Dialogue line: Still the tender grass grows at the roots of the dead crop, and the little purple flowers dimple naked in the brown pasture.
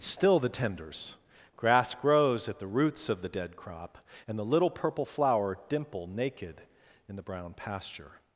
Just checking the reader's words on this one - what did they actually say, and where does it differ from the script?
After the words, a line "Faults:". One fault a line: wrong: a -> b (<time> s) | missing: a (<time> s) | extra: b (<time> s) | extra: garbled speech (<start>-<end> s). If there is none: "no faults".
Still the tenders grass grows at the roots of the dead crop, and the little purple flower dimple naked in the brown pasture.
Faults:
wrong: tender -> tenders (0.5 s)
wrong: flowers -> flower (5.0 s)